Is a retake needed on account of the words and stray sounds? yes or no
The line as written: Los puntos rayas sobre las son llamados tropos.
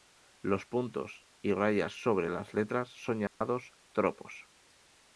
yes